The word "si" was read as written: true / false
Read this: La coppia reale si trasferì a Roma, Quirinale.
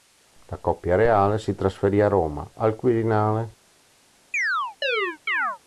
true